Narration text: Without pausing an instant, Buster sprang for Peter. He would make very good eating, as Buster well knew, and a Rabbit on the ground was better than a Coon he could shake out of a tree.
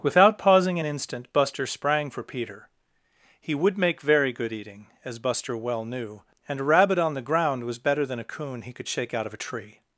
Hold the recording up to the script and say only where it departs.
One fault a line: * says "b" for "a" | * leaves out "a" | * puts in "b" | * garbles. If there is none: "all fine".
all fine